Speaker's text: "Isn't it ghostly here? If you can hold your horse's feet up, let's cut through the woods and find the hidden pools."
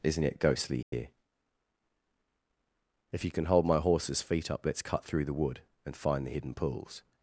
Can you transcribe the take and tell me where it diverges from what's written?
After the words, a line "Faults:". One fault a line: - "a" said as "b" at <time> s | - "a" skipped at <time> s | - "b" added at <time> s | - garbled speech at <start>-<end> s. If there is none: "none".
"Isn't it ghostly here? If you can hold my horse's feet up, let's cut through the wood and find the hidden pools."
Faults:
- "your" said as "my" at 3.6 s
- "woods" said as "wood" at 5.3 s